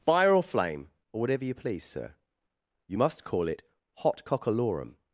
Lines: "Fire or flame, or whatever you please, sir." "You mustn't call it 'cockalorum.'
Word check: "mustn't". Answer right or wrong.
wrong